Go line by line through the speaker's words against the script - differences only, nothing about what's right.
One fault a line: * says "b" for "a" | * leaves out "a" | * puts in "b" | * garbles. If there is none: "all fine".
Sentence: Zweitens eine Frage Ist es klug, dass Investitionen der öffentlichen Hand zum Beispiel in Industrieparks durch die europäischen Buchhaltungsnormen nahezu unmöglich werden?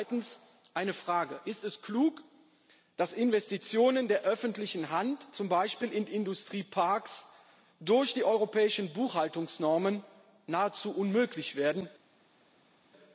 all fine